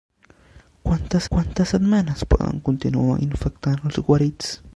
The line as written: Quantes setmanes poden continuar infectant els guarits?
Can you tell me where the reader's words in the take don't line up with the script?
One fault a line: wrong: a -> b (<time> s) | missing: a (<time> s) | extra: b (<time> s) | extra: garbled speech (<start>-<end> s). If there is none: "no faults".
extra: quantes (1.3 s)